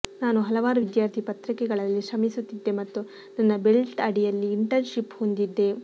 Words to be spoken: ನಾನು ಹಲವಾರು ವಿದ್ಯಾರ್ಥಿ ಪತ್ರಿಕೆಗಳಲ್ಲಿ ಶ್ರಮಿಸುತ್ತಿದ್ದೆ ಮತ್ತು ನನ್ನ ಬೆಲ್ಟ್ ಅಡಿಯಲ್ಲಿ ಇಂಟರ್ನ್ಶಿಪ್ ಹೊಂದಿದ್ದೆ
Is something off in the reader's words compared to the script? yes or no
no